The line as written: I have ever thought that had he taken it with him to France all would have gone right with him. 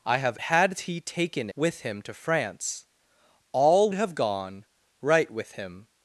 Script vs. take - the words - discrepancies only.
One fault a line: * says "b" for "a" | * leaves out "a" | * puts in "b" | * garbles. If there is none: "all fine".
* leaves out "ever thought that"
* leaves out "it"
* leaves out "would"